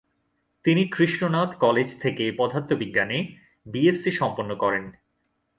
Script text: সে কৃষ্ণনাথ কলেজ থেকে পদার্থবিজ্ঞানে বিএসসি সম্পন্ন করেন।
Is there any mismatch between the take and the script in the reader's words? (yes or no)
yes